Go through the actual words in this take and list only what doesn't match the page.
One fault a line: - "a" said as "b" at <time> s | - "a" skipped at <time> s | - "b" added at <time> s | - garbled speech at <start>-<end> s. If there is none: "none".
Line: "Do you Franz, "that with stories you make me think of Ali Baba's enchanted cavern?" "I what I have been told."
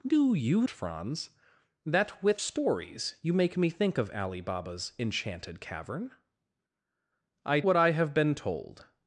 none